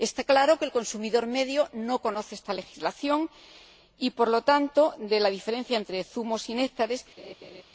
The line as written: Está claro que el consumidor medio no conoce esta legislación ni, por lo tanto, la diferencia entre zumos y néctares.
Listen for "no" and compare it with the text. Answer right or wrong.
right